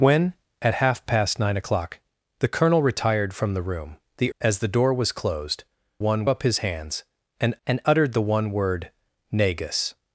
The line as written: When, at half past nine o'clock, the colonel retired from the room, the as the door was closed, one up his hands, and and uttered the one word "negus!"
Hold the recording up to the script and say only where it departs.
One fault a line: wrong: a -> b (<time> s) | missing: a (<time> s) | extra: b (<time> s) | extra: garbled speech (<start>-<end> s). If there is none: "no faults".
no faults